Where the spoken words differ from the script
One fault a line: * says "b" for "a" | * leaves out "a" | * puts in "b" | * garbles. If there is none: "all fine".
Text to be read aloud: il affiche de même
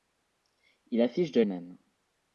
all fine